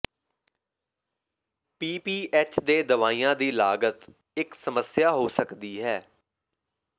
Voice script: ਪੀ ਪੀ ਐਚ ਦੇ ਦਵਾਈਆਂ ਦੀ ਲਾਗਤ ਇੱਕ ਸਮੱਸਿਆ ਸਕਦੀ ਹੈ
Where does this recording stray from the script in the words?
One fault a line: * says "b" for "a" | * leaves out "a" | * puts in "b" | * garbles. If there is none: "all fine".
* puts in "ਹੋ"